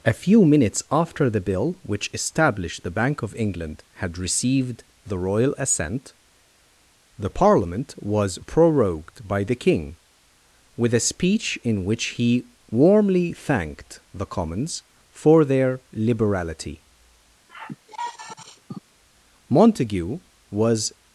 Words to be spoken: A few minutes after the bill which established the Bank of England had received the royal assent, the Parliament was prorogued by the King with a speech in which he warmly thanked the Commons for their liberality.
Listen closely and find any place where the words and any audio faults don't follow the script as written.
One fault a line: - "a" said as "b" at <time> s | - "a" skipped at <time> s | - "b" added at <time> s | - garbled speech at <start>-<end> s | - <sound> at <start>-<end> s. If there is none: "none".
- sigh at 17.5-18.8 s
- "Montague was" added at 19.5 s